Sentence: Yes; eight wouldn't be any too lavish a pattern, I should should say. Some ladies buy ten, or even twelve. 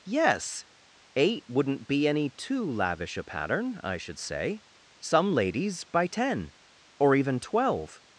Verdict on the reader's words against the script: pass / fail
fail